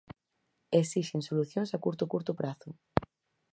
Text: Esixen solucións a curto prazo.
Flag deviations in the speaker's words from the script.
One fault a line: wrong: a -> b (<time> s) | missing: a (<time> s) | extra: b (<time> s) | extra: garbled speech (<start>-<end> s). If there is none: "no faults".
extra: curto (2.1 s)